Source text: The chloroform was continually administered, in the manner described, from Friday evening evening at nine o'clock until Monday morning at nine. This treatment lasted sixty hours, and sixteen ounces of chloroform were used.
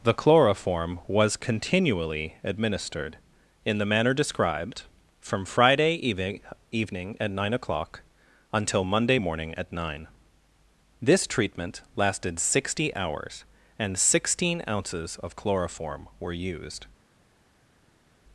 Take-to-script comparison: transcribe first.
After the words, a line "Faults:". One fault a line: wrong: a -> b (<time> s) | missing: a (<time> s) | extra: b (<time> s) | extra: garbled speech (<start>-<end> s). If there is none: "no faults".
The chloroform was continually administered, in the manner described, from Friday evening evening at nine o'clock until Monday morning at nine. This treatment lasted sixty hours, and sixteen ounces of chloroform were used.
Faults:
no faults